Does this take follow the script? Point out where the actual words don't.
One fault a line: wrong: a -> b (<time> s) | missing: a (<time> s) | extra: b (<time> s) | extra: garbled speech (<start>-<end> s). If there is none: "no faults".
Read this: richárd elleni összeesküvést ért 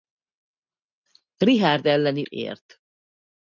missing: összeesküvést (2.3 s)